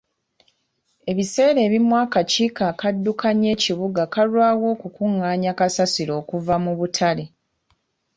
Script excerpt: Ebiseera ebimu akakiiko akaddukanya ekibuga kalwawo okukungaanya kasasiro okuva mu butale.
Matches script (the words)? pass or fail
pass